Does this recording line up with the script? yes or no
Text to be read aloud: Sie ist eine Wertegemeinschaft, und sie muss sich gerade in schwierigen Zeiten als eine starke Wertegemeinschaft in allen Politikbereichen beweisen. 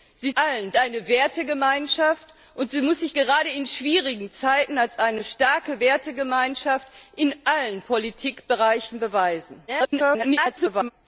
no